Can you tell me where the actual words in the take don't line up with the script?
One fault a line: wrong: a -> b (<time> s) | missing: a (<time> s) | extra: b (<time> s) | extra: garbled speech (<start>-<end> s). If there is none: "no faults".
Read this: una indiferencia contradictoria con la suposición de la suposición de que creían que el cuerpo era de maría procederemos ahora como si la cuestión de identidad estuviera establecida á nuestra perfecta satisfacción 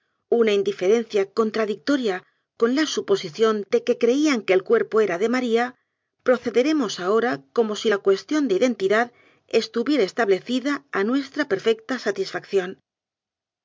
missing: la suposición de (3.8 s)